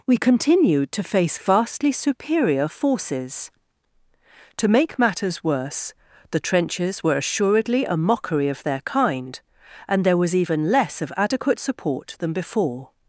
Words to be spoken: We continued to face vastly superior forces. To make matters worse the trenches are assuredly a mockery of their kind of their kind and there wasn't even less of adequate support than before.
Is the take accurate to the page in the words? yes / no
no